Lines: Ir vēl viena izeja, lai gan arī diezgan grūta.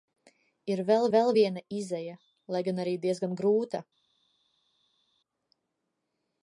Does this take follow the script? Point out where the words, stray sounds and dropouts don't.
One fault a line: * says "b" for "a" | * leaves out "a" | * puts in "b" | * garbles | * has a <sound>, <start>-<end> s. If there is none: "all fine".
* puts in "vēl"